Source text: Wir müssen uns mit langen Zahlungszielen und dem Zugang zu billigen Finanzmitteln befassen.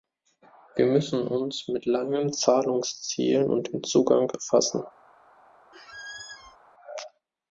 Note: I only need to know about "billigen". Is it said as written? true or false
false